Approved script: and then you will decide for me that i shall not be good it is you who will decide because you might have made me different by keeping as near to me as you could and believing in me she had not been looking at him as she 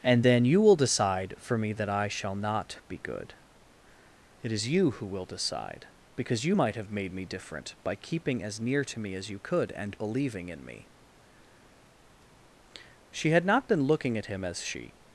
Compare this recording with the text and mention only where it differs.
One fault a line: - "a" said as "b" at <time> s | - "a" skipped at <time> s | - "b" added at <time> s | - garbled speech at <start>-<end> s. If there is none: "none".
none